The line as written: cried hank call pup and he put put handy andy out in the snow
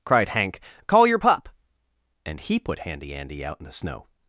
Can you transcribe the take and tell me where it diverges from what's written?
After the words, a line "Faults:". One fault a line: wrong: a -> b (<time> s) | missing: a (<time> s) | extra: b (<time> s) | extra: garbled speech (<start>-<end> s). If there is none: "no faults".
cried hank call your pup and he put handy andy out in the snow
Faults:
extra: your (1.1 s)
missing: put (2.8 s)